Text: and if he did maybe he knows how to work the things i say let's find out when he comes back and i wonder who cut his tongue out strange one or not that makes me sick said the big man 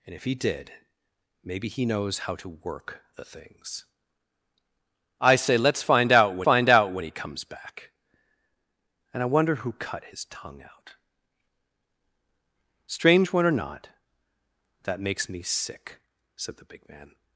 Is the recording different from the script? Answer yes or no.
yes